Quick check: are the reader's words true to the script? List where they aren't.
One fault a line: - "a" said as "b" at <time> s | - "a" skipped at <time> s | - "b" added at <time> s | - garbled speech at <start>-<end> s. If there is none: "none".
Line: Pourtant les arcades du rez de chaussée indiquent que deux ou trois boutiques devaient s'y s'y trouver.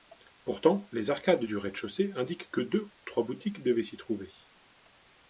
- "s'y" skipped at 4.0 s